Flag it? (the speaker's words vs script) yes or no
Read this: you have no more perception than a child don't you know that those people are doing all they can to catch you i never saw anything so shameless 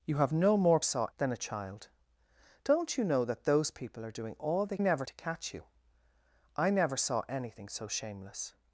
yes